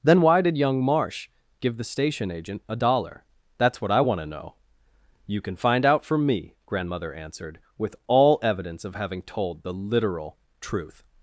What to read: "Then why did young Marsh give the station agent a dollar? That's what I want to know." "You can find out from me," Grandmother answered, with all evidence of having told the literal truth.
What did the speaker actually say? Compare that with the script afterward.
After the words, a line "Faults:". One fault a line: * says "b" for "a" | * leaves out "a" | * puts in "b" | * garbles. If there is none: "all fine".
"Then why did young Marsh give the station agent a dollar? That's what I want to know." "You can find out from me," Grandmother answered, with all evidence of having told the literal truth.
Faults:
all fine